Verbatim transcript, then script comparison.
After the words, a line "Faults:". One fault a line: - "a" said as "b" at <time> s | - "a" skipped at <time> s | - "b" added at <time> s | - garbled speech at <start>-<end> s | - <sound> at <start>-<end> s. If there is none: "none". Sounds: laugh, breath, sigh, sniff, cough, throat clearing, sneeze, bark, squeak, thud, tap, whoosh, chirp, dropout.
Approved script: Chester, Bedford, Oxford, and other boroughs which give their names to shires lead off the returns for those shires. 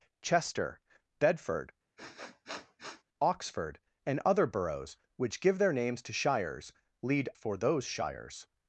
Chester, Bedford, Oxford, and other boroughs which give their names to shires lead for those shires.
Faults:
- sniff at 2.0-3.0 s
- "off the returns" skipped at 7.3 s